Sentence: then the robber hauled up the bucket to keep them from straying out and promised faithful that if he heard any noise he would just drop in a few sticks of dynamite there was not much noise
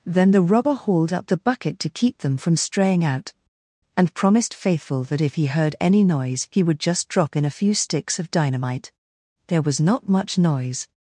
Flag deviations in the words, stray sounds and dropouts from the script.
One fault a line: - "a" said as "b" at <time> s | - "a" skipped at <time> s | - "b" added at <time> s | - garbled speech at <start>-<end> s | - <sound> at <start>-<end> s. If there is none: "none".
none